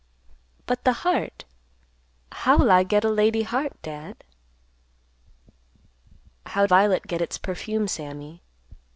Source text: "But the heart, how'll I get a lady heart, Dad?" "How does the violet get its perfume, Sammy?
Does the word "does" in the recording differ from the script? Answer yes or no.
yes